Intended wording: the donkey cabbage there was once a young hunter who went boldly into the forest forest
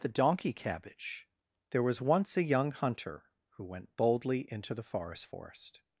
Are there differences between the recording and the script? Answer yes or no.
no